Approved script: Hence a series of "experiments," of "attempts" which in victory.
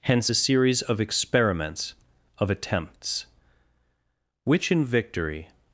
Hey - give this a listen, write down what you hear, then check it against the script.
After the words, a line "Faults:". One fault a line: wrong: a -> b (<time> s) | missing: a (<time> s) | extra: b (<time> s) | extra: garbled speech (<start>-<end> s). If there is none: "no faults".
Hence a series of "experiments," of "attempts" which in victory.
Faults:
no faults